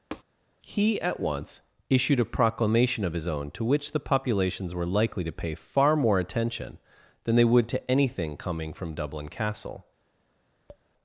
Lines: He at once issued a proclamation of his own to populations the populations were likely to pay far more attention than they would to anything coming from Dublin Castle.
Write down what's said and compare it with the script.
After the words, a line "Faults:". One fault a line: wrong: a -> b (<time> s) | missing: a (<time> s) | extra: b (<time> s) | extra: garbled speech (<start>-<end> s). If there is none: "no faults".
He at once issued a proclamation of his own to which the populations were likely to pay far more attention than they would to anything coming from Dublin Castle.
Faults:
wrong: populations -> which (3.6 s)